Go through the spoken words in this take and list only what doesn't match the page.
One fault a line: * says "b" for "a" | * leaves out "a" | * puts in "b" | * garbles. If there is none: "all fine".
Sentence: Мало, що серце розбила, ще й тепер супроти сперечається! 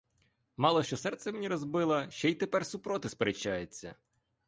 * puts in "мені"